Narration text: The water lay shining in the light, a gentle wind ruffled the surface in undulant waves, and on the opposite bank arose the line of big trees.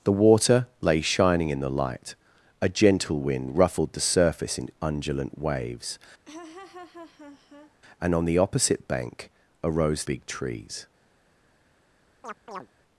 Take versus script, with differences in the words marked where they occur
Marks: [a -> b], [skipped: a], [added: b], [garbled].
The water lay shining in the light, a gentle wind ruffled the surface in undulant waves, and on the opposite bank arose [skipped: the line of] big trees.